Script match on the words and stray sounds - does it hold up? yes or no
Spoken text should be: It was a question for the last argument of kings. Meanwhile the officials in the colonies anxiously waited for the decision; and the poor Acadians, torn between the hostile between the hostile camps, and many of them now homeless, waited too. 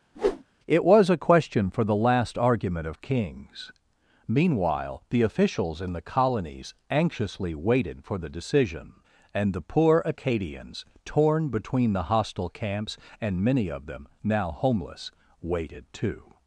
no